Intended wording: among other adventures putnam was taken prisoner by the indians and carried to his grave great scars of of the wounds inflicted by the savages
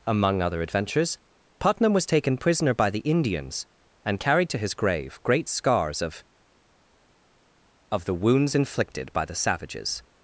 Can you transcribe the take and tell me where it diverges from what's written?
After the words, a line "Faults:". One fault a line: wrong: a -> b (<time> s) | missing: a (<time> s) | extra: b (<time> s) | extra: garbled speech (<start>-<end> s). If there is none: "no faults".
among other adventures putnam was taken prisoner by the indians and carried to his grave great scars of of the wounds inflicted by the savages
Faults:
no faults